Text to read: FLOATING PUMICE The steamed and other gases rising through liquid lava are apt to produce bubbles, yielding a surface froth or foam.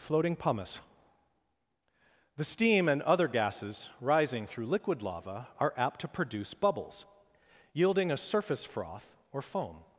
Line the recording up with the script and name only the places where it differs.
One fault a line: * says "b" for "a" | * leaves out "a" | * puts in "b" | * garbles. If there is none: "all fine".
* says "steam" for "steamed"